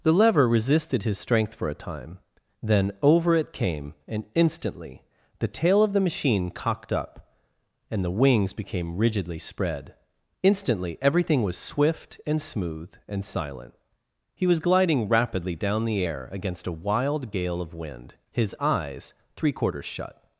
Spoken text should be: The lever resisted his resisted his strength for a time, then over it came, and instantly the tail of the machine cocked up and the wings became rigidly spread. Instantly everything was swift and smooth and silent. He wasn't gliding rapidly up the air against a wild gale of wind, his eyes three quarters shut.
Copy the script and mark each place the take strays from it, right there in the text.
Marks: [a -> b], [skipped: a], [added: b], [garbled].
The lever resisted his [skipped: resisted his] strength for a time, then over it came, and instantly the tail of the machine cocked up and the wings became rigidly spread. Instantly everything was swift and smooth and silent. He [wasn't -> was] gliding rapidly [up -> down] the air against a wild gale of wind, his eyes three quarters shut.